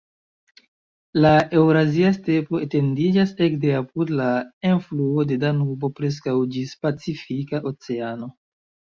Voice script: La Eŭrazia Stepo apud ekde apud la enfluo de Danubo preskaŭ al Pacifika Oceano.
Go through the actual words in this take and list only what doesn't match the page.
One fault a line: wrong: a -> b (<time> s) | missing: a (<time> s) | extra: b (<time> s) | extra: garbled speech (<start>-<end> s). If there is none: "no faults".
wrong: apud -> etendiĝas (2.7 s)
wrong: al -> ĝis (6.5 s)